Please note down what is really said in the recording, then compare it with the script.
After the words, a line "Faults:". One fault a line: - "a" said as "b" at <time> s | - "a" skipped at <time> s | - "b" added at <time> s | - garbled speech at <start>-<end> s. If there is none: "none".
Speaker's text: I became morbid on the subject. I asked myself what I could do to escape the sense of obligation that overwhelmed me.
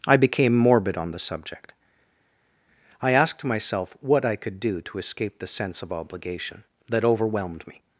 I became morbid on the subject. I asked myself what I could do to escape the sense of obligation that overwhelmed me.
Faults:
none